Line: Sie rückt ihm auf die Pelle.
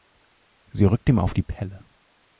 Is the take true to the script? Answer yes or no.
yes